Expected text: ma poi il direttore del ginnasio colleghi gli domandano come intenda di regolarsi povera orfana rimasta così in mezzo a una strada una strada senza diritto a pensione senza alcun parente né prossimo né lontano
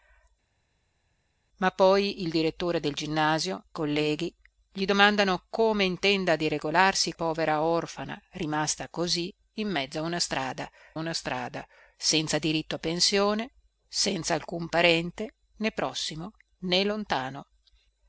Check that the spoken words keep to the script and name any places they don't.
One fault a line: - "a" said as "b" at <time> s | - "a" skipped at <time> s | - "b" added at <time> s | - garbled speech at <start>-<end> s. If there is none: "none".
none